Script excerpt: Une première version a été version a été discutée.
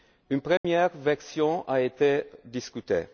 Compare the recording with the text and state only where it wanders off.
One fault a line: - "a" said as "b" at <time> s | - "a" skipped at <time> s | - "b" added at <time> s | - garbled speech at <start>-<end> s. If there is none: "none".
- "version a été" skipped at 2.2 s